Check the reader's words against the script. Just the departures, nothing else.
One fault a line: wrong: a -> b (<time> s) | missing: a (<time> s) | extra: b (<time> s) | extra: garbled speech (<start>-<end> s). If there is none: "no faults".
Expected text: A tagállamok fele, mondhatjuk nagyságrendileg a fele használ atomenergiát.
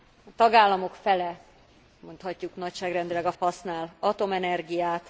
missing: fele (3.3 s)